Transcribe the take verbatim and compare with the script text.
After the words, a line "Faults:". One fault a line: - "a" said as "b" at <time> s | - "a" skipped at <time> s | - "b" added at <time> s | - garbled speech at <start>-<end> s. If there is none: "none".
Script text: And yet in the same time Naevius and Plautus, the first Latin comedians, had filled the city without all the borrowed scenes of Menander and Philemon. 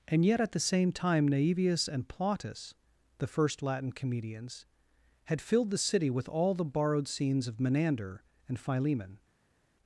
And yet at the same time Naevius and Plautus, the first Latin comedians, had filled the city with all the borrowed scenes of Menander and Philemon.
Faults:
- "in" said as "at" at 0.4 s
- "without" said as "with" at 6.1 s